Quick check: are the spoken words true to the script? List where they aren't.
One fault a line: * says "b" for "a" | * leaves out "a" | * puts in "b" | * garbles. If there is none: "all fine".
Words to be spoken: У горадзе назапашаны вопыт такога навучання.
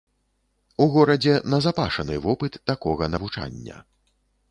all fine